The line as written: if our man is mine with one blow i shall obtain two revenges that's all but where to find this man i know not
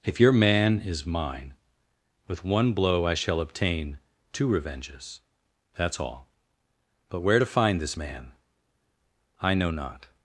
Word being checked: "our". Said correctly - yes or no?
no